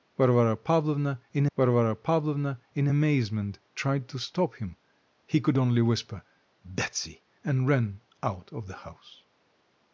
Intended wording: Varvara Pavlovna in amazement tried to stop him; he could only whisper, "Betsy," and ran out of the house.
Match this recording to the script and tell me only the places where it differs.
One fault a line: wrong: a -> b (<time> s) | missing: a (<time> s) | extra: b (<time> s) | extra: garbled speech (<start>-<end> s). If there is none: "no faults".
extra: varvara Pavlovna in (1.6 s)